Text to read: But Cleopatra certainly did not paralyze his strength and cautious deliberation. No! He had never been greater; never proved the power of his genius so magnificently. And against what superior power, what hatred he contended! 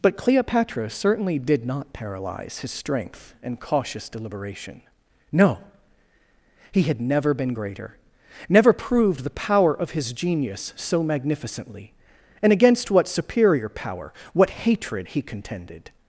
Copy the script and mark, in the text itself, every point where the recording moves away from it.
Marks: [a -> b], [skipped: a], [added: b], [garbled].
But Cleopatra certainly did not paralyze his strength and cautious deliberation. No! He had never been greater; never proved the power of his genius so magnificently. And against what superior power, what hatred he contended!